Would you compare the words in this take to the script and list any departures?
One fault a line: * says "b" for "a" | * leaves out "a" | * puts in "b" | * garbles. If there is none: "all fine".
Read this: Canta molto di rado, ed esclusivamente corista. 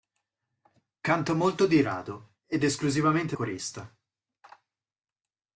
all fine